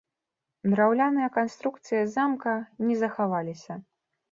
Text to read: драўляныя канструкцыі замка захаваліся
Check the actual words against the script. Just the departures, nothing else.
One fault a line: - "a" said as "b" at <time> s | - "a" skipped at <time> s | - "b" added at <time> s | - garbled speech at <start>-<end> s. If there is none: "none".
- "не" added at 2.9 s